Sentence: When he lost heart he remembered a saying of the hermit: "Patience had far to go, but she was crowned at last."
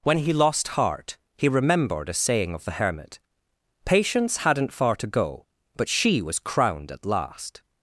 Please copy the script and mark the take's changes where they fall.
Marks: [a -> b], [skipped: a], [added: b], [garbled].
When he lost heart he remembered a saying of the hermit: "Patience [had -> hadn't] far to go, but she was crowned at last."